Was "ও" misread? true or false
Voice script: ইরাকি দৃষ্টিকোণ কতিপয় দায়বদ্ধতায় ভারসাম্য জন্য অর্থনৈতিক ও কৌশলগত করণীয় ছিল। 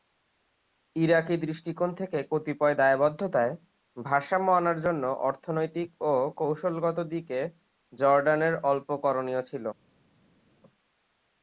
false